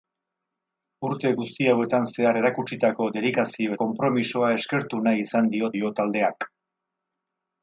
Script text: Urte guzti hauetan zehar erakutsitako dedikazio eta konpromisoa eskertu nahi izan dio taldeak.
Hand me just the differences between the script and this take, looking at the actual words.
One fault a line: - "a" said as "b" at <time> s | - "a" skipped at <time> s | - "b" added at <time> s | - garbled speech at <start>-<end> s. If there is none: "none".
- "eta" skipped at 3.8 s
- "dio" added at 5.8 s